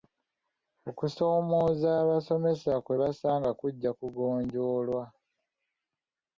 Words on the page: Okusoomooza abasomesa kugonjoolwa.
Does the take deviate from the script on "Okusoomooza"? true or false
false